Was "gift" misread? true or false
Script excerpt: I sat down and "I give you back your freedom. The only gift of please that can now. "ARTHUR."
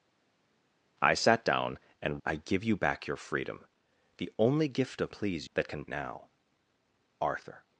false